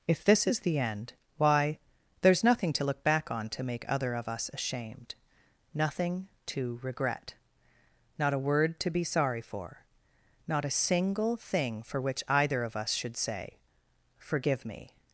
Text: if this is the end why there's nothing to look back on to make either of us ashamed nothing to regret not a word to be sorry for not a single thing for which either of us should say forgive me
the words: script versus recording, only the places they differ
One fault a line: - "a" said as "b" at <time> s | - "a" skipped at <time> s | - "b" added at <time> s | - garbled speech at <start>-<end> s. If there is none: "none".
- "either" said as "other" at 3.9 s